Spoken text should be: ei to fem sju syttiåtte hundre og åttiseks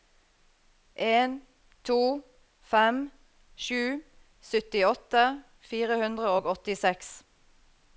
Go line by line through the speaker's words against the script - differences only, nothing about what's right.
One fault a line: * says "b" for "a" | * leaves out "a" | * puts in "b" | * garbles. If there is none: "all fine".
* says "en" for "ei"
* puts in "fire"